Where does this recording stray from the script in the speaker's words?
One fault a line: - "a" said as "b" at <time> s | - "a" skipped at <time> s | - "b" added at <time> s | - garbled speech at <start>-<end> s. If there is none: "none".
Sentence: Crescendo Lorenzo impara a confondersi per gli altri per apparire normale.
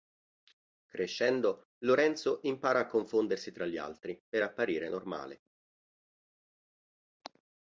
- "per" said as "tra" at 3.5 s